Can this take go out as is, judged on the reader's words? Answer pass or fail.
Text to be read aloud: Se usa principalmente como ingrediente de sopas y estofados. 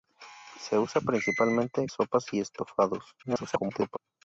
fail